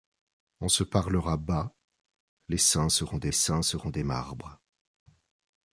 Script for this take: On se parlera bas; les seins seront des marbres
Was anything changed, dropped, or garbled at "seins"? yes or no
no